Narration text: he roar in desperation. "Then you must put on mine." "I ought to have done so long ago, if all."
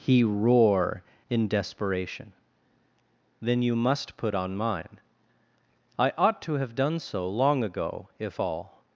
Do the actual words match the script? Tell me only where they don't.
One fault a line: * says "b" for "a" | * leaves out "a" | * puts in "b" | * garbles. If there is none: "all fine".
all fine